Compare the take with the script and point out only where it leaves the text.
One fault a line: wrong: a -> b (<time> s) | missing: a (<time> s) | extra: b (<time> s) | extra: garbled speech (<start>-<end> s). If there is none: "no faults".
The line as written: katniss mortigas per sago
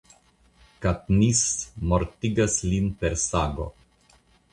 extra: lin (2.7 s)